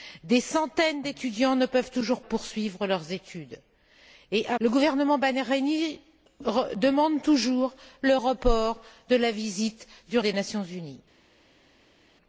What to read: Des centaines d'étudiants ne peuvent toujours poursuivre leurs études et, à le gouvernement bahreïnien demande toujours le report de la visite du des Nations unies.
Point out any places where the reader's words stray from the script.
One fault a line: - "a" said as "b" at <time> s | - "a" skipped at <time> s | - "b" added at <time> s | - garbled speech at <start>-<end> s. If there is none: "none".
none